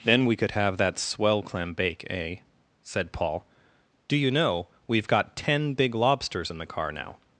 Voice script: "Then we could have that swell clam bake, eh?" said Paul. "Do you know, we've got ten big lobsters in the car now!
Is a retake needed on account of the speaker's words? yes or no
no